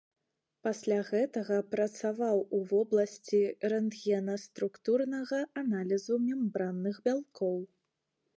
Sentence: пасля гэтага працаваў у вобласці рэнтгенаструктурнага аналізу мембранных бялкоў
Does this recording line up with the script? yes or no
yes